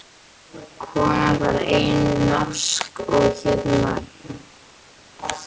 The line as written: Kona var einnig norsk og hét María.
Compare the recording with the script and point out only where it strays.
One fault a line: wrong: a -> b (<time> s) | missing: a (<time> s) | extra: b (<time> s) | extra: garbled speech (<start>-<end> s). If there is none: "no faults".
no faults